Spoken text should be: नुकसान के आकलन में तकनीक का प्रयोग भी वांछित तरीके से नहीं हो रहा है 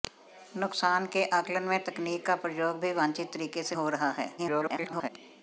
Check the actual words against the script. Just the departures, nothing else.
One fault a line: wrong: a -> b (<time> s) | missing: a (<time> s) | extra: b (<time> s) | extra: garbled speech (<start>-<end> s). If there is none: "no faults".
missing: नहीं (3.8 s)
extra: garbled speech (4.4-5.1 s)